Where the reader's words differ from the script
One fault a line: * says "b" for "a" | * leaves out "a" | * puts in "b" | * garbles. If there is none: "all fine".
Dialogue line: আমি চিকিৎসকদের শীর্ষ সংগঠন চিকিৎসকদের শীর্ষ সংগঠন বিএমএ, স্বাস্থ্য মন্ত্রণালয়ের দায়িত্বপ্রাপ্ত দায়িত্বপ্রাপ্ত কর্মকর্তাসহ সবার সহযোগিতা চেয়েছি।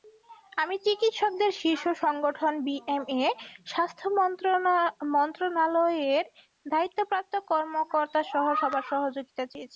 * leaves out "চিকিৎসকদের শীর্ষ সংগঠন"
* leaves out "দায়িত্বপ্রাপ্ত"